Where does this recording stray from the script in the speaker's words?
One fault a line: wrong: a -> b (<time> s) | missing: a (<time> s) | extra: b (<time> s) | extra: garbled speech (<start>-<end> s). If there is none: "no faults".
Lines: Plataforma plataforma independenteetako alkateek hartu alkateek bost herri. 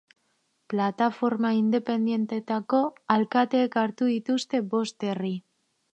missing: plataforma (1.5 s)
wrong: alkateek -> dituzte (4.1 s)